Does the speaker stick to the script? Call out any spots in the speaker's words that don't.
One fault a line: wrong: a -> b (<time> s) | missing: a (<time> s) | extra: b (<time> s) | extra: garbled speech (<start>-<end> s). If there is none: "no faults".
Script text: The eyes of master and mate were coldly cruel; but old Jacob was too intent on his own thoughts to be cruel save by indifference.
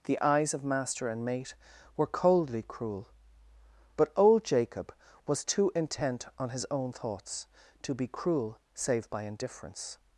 no faults